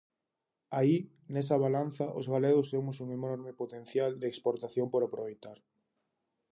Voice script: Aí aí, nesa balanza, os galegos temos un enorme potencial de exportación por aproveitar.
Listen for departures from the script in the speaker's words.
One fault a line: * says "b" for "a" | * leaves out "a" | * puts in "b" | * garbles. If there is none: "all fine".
* leaves out "aí"